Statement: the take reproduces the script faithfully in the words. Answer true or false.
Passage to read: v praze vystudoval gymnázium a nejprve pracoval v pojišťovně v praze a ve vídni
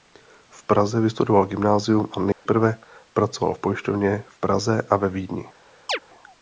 true